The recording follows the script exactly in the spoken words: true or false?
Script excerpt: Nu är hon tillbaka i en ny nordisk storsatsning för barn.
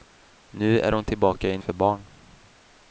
false